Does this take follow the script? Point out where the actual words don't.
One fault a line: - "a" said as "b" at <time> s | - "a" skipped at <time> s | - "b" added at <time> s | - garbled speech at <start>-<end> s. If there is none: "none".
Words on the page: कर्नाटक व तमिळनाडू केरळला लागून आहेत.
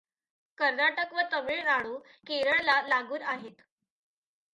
none